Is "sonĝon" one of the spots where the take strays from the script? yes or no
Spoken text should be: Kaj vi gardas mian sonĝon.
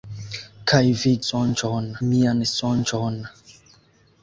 no